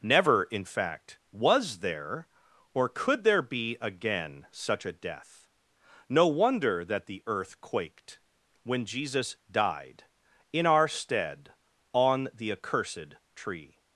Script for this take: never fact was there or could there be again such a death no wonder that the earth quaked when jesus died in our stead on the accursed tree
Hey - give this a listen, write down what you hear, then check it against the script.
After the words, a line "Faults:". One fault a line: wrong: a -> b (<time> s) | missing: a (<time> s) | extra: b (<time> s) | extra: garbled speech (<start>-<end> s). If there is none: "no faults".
never in fact was there or could there be again such a death no wonder that the earth quaked when jesus died in our stead on the accursed tree
Faults:
extra: in (0.4 s)